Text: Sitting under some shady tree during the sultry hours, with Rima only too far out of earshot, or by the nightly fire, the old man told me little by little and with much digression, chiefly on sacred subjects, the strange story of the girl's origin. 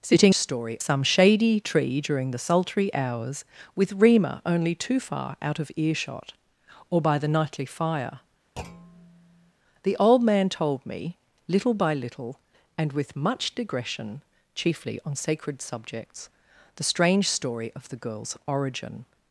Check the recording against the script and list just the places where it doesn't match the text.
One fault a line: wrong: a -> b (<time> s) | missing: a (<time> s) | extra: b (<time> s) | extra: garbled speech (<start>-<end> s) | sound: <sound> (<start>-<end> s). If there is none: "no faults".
wrong: under -> story (0.3 s)
sound: thud (8.6-9.5 s)